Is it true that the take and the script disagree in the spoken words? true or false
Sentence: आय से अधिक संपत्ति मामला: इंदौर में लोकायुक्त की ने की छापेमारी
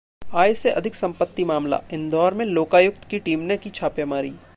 true